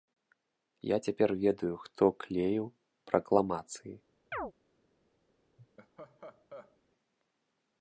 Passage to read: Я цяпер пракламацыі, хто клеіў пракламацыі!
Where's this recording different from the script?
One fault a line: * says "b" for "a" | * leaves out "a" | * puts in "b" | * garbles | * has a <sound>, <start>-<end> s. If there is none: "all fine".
* says "ведаю" for "пракламацыі"
* has a chirp, 4.3-4.5 s
* has a laugh, 5.6-6.8 s